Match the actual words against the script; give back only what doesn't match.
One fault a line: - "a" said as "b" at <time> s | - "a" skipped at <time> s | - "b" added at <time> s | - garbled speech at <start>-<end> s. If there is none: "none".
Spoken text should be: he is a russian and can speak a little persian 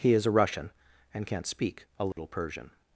- "can" said as "can't" at 1.3 s